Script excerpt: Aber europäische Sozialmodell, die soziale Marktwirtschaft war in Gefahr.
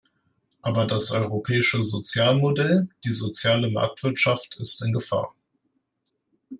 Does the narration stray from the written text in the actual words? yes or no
yes